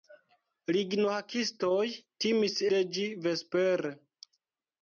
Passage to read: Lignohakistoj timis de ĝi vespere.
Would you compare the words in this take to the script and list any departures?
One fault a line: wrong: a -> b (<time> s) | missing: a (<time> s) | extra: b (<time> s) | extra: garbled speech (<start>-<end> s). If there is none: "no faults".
no faults